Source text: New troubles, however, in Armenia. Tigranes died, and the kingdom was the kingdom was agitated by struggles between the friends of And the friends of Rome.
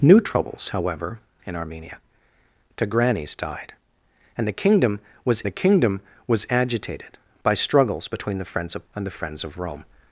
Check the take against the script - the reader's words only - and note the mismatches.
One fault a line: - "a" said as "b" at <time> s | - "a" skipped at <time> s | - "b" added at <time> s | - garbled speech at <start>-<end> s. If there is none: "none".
none